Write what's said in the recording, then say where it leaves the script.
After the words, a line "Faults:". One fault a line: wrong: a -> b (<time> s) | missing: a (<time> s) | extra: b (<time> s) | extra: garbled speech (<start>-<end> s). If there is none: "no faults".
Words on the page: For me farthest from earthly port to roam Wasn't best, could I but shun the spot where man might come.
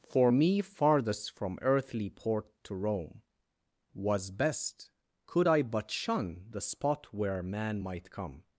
For me farthest from earthly port to roam Was best, could I but shun the spot where man might come.
Faults:
wrong: Wasn't -> Was (3.9 s)